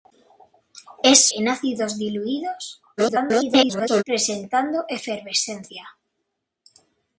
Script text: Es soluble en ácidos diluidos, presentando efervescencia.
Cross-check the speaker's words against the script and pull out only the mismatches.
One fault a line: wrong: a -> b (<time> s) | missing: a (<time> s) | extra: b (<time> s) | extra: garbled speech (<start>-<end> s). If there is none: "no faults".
missing: soluble (1.3 s)
extra: garbled speech (3.0-4.0 s)